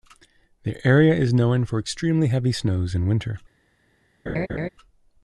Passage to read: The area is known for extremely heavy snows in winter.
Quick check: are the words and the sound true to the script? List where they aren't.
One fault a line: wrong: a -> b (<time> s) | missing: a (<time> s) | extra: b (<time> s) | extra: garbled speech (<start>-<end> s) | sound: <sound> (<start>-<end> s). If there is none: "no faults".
sound: laugh (4.3-4.7 s)